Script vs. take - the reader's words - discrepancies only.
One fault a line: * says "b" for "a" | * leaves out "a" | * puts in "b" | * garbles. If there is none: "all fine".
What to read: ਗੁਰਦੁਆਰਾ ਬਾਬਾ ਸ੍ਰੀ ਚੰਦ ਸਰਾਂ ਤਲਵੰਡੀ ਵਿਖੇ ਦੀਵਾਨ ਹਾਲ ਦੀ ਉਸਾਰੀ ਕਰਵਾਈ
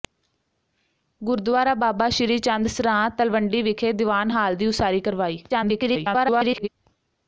* garbles